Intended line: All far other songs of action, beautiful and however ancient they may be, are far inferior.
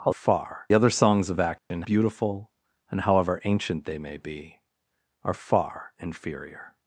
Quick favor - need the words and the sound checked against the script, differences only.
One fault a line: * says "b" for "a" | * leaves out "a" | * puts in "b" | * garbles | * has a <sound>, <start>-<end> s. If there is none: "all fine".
* has a dropout, 1.6-1.7 s